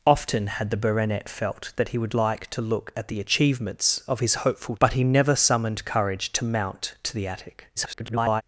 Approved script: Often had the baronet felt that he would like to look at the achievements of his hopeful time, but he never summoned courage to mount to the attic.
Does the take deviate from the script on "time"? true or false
true